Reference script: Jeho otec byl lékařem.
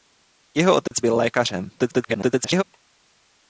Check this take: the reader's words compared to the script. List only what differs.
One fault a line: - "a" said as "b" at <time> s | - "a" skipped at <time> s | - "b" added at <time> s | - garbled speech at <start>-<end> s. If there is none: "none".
- garbled speech at 1.8-2.6 s